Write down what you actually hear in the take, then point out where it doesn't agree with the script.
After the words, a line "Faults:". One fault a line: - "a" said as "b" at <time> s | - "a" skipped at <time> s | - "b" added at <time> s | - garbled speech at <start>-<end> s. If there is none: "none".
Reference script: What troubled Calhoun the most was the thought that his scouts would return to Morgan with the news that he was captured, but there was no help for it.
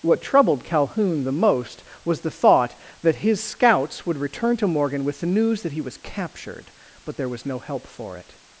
What troubled Calhoun the most was the thought that his scouts would return to Morgan with the news that he was captured, but there was no help for it.
Faults:
none